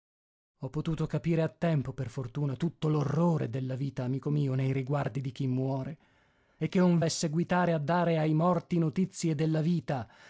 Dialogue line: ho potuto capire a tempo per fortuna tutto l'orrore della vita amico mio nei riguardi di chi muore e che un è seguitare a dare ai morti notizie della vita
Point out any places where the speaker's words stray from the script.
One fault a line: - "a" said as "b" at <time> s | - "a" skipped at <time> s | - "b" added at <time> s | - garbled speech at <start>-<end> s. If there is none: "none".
none